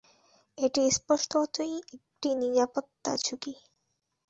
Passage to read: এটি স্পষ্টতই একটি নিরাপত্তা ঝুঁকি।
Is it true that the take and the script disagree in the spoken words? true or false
false